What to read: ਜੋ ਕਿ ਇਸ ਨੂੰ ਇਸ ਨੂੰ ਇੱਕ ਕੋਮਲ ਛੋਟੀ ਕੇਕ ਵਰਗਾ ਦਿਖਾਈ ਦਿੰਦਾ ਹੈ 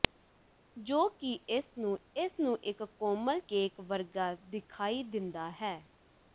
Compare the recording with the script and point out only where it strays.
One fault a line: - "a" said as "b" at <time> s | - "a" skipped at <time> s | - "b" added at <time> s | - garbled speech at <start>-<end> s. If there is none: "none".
- "ਛੋਟੀ" skipped at 3.4 s